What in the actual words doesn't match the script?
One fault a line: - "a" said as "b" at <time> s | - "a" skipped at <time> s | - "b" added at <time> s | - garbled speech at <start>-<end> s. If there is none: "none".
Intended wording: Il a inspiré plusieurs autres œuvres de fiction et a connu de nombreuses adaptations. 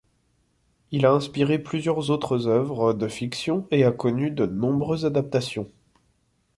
none